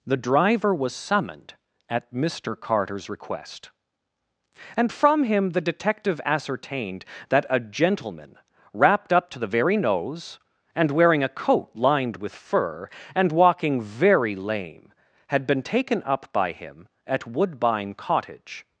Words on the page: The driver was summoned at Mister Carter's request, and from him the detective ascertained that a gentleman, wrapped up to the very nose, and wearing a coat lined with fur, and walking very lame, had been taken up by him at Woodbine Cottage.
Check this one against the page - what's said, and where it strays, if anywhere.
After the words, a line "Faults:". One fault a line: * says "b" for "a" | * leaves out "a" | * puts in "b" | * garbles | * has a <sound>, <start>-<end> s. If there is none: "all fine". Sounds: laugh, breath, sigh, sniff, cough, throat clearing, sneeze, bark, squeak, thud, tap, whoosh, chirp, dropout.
The driver was summoned at Mister Carter's request, and from him the detective ascertained that a gentleman, wrapped up to the very nose, and wearing a coat lined with fur, and walking very lame, had been taken up by him at Woodbine Cottage.
Faults:
all fine